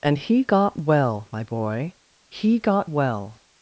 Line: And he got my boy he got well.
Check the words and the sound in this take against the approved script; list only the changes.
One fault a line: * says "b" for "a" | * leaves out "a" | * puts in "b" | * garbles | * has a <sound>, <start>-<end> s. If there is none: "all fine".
* puts in "well"